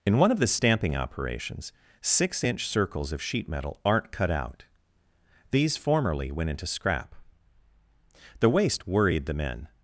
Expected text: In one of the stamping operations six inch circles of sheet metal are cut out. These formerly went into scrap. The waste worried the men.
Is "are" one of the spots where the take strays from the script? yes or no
yes